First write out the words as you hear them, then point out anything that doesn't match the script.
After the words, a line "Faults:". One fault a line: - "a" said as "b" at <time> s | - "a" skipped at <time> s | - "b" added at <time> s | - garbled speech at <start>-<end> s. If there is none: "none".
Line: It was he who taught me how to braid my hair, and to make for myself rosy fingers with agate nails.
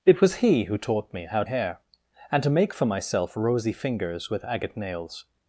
It was he who taught me how hair, and to make for myself rosy fingers with agate nails.
Faults:
- "to braid my" skipped at 1.4 s